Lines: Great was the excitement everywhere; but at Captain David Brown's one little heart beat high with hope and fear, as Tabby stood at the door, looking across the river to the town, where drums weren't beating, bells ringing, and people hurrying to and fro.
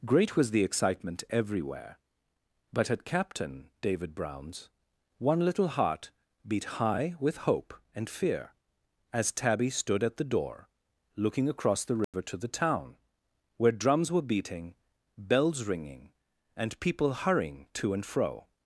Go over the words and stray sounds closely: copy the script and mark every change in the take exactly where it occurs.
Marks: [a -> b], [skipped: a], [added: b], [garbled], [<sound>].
Great was the excitement everywhere; but at Captain David Brown's one little heart beat high with hope and fear, as Tabby stood at the door, looking across the river [dropout] to the town, where drums [weren't -> were] beating, bells ringing, and people hurrying to and fro.